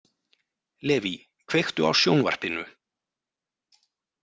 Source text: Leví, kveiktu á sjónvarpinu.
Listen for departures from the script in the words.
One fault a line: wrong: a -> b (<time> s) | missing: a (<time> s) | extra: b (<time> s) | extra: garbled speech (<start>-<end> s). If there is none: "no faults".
no faults